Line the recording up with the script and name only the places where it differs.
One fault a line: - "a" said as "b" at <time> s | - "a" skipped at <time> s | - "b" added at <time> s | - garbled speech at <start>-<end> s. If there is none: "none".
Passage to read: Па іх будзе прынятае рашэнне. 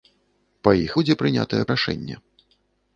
none